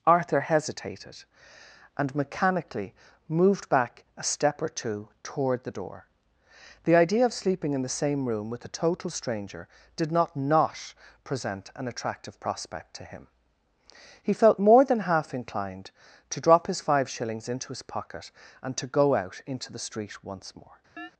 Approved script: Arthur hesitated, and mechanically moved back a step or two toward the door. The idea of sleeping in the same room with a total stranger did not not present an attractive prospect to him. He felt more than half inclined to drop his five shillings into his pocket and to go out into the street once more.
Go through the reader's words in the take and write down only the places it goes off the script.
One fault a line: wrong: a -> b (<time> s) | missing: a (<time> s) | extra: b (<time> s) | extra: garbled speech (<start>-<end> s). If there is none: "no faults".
no faults